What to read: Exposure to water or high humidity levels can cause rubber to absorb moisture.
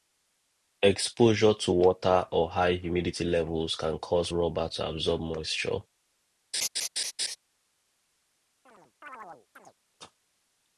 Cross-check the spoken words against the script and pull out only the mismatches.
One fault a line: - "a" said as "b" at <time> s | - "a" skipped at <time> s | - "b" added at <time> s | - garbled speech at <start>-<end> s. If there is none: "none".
none